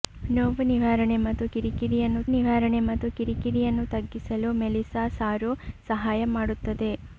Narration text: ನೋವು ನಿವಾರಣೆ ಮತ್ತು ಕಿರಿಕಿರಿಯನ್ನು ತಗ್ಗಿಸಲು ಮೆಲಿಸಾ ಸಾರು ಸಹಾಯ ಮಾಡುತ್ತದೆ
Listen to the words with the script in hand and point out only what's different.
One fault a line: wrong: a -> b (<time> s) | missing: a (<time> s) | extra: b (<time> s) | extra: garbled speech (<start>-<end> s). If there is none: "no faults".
extra: ನಿವಾರಣೆ ಮತ್ತು ಕಿರಿಕಿರಿಯನ್ನು (2.3 s)